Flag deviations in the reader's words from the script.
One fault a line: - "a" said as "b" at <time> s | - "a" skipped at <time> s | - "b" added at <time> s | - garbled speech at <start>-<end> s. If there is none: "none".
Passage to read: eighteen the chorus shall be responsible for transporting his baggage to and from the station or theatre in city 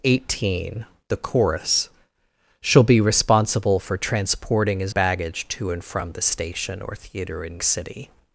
none